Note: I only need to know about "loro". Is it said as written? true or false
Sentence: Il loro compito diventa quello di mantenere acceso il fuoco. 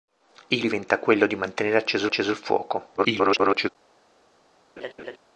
false